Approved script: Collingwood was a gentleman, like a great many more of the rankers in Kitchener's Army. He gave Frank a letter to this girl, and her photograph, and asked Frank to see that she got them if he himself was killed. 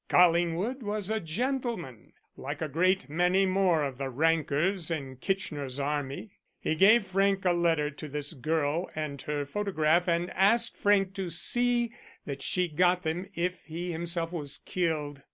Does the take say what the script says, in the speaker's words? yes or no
yes